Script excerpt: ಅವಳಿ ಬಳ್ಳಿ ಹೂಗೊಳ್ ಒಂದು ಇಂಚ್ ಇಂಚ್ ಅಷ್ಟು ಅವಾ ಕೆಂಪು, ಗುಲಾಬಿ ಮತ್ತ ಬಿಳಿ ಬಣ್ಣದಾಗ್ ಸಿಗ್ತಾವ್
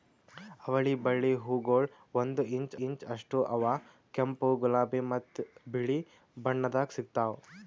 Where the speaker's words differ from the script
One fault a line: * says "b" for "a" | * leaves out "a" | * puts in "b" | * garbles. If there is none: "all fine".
all fine